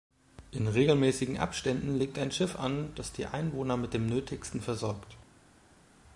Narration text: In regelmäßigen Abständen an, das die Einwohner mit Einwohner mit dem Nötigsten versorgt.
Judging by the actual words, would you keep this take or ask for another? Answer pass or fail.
fail